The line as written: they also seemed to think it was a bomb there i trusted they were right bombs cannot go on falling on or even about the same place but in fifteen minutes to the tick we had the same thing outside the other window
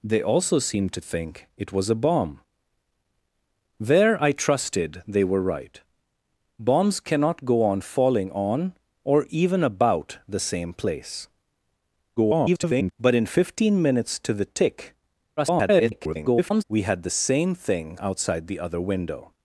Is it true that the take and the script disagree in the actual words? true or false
true